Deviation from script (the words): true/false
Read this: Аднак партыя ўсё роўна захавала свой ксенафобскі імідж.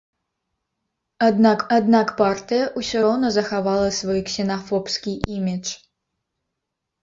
true